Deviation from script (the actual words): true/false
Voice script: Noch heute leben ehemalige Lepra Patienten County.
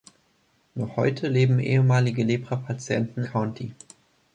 false